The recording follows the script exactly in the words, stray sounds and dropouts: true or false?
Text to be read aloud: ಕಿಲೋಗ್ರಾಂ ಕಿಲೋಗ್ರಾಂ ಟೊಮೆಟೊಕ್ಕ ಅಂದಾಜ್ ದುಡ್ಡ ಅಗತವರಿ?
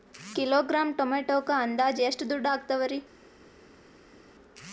false